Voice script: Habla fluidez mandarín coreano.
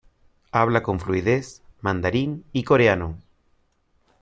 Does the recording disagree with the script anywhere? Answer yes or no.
yes